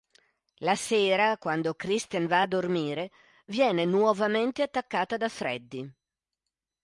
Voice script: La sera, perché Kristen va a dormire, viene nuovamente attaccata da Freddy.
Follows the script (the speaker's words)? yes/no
no